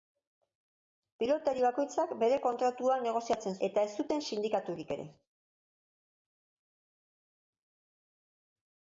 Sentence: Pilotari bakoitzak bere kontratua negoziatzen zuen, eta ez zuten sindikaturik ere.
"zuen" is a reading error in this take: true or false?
true